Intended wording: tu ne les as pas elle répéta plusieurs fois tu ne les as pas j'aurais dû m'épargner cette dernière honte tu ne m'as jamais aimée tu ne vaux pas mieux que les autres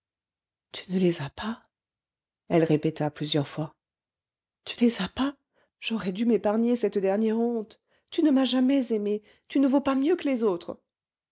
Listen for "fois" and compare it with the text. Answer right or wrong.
right